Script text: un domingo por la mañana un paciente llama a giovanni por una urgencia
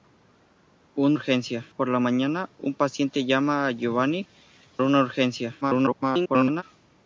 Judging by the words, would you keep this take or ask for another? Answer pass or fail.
fail